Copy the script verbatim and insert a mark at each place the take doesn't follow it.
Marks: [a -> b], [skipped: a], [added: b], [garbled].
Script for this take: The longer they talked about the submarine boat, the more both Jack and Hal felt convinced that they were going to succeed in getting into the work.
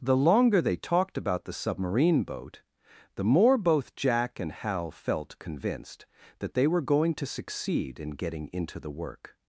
The longer they talked about the submarine boat, the more both Jack and Hal felt convinced that they were going to succeed in getting into the work.